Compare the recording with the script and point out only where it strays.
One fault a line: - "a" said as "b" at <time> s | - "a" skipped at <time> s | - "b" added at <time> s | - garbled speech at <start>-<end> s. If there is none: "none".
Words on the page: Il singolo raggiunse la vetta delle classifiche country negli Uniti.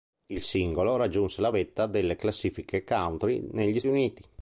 none